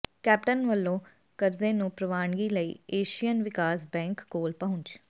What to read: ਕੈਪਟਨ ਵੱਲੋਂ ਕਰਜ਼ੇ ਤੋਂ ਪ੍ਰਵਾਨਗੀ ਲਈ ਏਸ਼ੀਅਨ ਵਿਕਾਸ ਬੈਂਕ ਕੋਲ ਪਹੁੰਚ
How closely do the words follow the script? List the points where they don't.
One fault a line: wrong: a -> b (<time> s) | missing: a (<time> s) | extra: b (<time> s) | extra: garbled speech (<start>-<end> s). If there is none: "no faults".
wrong: ਤੋਂ -> ਨੂੰ (1.7 s)